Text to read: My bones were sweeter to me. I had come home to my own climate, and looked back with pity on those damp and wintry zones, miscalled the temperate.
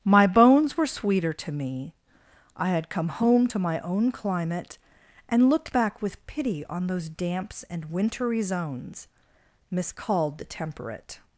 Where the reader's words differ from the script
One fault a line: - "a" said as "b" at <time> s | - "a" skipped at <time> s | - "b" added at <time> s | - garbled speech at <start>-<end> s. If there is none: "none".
- "damp" said as "damps" at 7.1 s